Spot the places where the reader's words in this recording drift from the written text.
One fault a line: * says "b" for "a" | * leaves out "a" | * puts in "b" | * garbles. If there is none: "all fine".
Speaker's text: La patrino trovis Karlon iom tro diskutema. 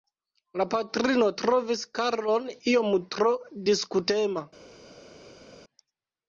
all fine